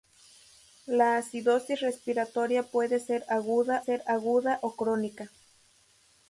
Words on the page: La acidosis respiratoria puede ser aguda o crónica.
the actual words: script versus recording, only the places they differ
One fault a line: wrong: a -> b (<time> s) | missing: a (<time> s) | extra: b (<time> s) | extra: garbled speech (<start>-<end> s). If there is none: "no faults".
extra: ser aguda (3.8 s)